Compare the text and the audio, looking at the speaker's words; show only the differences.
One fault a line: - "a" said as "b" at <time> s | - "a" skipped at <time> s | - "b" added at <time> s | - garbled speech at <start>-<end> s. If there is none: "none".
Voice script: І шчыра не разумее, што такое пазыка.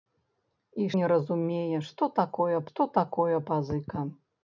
- "шчыра" skipped at 0.9 s
- "што такое" added at 2.7 s